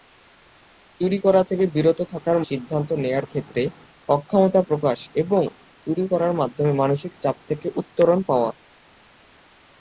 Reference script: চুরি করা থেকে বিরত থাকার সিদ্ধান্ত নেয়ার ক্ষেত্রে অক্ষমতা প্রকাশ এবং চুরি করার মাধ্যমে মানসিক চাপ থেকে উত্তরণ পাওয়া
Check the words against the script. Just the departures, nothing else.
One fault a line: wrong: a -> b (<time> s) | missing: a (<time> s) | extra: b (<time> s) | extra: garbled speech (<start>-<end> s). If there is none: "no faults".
no faults